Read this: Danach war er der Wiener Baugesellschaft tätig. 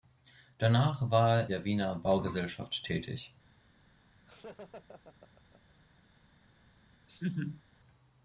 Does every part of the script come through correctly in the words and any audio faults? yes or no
no